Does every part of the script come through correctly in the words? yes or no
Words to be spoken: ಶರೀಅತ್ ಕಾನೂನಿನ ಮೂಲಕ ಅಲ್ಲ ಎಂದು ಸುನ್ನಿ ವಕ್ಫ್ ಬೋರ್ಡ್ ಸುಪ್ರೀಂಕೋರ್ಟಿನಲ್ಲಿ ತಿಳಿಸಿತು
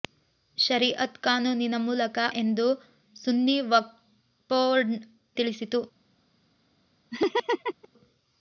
no